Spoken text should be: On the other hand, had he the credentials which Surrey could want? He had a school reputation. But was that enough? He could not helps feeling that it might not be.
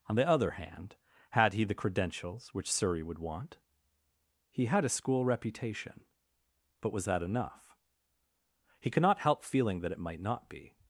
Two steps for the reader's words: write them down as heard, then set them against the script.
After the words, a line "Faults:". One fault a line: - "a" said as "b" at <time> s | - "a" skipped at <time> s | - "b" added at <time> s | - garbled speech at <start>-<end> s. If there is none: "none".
On the other hand, had he the credentials which Surrey would want? He had a school reputation. But was that enough? He could not help feeling that it might not be.
Faults:
- "could" said as "would" at 3.0 s
- "helps" said as "help" at 9.2 s